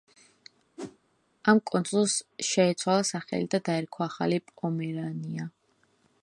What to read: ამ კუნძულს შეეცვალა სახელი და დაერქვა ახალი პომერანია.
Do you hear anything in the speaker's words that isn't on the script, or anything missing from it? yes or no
no